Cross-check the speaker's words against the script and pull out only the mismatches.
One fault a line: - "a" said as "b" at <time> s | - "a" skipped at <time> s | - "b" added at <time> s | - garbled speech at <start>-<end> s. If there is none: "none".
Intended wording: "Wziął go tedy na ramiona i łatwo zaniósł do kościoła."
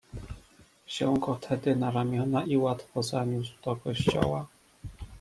none